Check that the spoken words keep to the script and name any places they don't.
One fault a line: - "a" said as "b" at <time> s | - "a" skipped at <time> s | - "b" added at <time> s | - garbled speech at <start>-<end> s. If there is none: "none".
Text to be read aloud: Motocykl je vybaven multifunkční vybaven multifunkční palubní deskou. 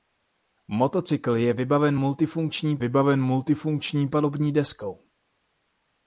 none